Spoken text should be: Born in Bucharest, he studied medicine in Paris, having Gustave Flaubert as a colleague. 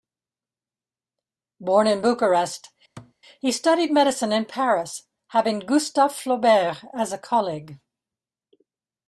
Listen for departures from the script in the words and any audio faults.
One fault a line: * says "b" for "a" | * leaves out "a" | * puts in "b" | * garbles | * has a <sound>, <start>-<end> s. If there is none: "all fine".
* has a thud, 3.0-3.1 s